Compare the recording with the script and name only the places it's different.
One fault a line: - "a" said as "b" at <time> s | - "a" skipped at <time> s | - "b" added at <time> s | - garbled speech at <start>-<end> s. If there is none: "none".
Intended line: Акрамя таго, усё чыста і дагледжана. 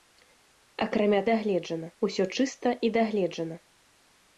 - "таго" said as "дагледжана" at 1.3 s